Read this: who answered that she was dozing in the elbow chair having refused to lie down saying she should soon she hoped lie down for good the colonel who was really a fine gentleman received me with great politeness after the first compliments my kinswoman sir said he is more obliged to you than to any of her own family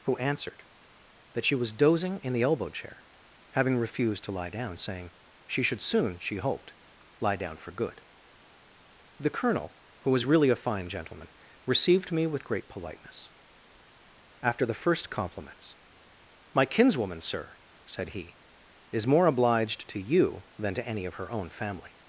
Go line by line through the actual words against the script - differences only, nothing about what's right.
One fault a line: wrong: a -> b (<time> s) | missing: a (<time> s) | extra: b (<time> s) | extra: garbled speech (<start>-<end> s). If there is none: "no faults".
no faults